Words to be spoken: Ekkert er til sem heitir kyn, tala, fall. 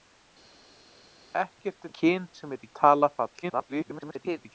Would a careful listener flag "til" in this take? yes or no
yes